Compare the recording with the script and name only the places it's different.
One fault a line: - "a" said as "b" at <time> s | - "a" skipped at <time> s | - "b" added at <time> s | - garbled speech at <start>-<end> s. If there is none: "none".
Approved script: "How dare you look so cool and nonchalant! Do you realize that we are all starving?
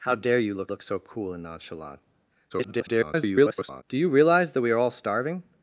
- "look" added at 0.7 s
- garbled speech at 2.5-3.8 s